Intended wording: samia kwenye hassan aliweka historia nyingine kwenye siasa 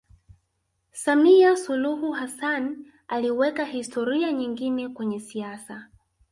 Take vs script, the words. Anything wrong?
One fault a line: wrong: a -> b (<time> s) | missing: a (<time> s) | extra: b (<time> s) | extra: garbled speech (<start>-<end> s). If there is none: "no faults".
wrong: kwenye -> suluhu (1.6 s)